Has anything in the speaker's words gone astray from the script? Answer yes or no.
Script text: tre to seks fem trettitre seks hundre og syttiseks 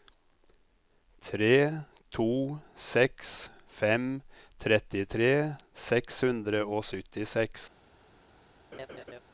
no